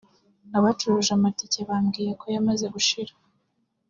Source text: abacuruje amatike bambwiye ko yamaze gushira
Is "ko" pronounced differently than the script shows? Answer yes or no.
no